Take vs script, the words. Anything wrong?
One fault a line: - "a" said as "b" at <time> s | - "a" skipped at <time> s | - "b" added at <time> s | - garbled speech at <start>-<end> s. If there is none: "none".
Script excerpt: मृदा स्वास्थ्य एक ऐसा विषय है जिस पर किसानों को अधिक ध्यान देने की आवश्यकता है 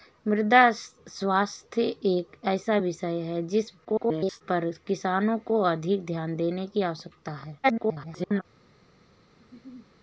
- garbled speech at 3.8-4.4 s
- garbled speech at 7.6-8.4 s